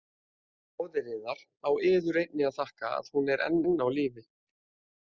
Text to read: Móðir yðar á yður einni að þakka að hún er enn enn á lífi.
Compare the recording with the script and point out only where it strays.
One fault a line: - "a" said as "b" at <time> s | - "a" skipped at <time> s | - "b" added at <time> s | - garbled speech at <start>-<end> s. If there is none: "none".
none